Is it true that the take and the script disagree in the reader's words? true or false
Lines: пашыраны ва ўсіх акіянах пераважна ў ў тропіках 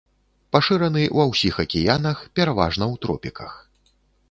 true